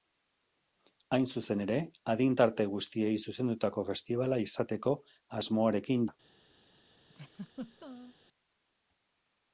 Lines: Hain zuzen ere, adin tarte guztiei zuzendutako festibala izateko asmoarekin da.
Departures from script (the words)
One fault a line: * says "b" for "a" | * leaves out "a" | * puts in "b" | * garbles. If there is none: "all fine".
all fine